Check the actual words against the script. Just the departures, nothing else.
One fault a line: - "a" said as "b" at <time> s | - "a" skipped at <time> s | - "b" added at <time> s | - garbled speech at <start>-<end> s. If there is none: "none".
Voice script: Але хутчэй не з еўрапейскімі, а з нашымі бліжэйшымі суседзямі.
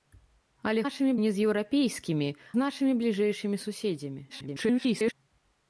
- "хутчэй" said as "нашымі" at 0.8 s
- "а" skipped at 2.3 s
- garbled speech at 4.3-5.1 s